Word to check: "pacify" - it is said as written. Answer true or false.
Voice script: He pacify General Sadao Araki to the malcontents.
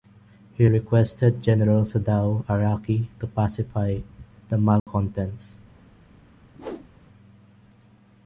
false